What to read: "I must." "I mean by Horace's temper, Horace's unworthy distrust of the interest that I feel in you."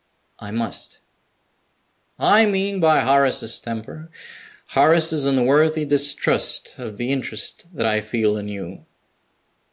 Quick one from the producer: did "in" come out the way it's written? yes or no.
yes